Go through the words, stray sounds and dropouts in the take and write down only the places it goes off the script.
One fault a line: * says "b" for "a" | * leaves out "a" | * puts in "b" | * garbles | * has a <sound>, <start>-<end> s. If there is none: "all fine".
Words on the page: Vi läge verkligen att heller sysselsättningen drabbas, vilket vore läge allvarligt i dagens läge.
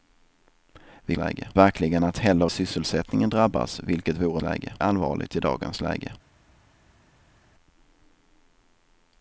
all fine